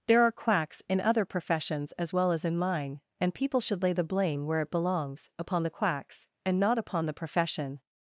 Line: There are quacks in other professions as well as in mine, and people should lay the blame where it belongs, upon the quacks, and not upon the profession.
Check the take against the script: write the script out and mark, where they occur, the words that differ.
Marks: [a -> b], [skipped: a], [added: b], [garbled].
There are quacks in other professions as well as in mine, and people should lay the blame where it belongs, upon the quacks, and not upon the profession.